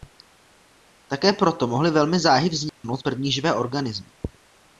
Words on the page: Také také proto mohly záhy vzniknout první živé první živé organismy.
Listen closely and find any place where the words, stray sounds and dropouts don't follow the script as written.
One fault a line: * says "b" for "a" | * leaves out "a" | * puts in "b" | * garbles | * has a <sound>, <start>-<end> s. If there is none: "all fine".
* leaves out "také"
* puts in "velmi"
* has a dropout, 2.7-2.8 s
* leaves out "první živé"